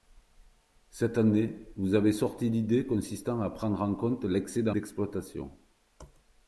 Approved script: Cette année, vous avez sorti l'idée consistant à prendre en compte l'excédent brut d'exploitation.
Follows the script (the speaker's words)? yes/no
no